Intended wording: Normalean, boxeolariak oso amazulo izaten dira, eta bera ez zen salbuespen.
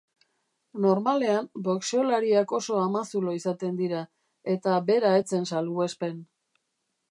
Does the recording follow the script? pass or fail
pass